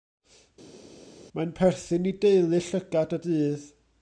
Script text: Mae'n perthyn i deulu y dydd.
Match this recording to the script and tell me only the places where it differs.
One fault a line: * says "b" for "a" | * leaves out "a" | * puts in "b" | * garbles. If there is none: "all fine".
* puts in "llygad"